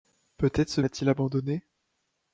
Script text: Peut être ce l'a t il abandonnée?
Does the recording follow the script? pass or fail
pass